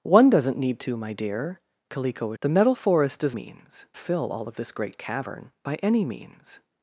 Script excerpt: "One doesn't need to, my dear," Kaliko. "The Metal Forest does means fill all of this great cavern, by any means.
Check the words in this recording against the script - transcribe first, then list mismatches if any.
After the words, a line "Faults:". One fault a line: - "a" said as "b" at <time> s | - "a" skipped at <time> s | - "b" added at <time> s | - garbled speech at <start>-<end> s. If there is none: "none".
"One doesn't need to, my dear," Kaliko. "The Metal Forest does means fill all of this great cavern, by any means.
Faults:
none